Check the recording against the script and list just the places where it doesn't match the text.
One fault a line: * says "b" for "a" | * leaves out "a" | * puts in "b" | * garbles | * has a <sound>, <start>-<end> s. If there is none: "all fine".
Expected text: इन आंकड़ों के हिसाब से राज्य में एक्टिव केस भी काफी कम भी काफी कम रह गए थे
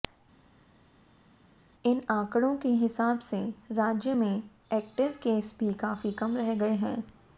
* leaves out "भी काफी कम"
* says "हैं" for "थे"